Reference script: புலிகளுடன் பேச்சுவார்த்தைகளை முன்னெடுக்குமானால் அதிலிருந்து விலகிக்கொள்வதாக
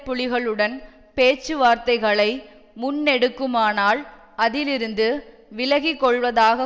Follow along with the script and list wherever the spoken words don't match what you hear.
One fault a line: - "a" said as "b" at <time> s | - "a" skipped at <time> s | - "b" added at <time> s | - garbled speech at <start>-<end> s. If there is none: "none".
none